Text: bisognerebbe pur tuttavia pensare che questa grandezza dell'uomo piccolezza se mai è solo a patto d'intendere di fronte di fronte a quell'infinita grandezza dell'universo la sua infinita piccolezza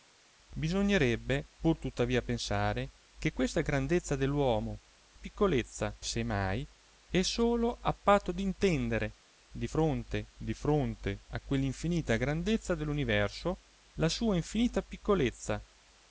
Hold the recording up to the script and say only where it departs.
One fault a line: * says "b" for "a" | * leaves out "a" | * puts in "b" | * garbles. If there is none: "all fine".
all fine